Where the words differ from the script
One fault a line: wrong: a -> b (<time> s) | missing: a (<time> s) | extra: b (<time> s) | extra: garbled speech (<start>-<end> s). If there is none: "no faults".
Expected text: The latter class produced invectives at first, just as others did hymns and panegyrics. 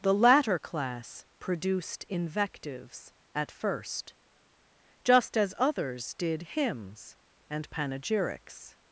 no faults